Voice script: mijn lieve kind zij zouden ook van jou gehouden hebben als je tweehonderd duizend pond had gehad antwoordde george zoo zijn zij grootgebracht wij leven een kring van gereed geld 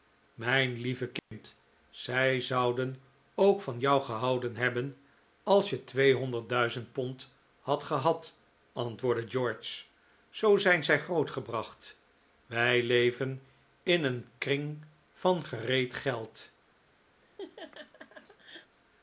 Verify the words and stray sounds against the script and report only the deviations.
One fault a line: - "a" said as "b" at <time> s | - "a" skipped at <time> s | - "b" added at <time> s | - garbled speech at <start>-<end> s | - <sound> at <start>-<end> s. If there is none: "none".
- dropout at 1.2-1.3 s
- "in" added at 13.8 s
- laugh at 17.2-18.8 s